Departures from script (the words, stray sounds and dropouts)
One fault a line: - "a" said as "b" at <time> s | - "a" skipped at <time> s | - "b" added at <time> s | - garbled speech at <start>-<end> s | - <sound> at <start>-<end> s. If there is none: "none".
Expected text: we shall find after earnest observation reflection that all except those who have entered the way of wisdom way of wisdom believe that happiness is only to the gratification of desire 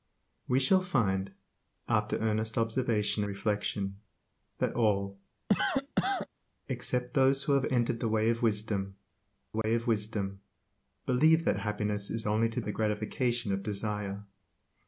- cough at 5.5-6.3 s
- dropout at 9.6-9.6 s